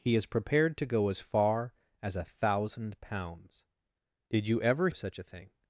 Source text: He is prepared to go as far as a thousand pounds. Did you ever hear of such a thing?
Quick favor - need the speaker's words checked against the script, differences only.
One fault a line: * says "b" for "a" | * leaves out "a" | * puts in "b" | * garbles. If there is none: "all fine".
* leaves out "hear"